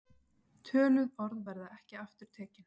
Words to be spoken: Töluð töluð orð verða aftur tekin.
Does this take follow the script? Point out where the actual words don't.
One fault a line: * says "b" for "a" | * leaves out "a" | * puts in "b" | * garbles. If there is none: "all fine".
* leaves out "töluð"
* puts in "ekki"